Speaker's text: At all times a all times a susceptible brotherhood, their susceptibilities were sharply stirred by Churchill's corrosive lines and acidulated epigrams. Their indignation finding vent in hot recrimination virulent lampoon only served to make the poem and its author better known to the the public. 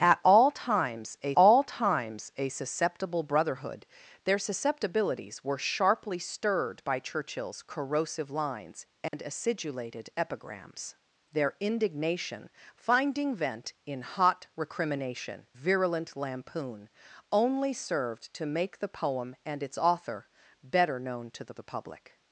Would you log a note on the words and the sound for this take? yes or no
yes